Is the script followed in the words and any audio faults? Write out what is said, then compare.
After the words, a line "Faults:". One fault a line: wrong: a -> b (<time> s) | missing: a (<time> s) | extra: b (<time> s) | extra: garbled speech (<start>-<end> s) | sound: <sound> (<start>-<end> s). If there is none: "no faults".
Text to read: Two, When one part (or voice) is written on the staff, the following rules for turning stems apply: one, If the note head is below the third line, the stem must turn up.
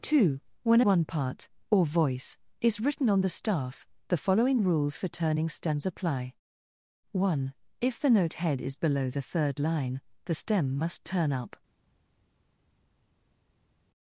Two, When one part (or voice) is written on the staff, the following rules for turning stems apply: one, If the note head is below the third line, the stem must turn up.
Faults:
no faults